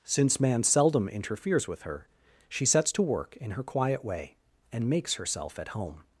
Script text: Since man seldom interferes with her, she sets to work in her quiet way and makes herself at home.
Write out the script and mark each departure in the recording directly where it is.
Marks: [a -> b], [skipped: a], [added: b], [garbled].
Since man seldom interferes with her, she sets to work in her quiet way and makes herself at home.